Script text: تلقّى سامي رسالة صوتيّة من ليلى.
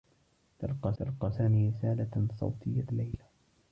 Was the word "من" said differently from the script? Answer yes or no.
yes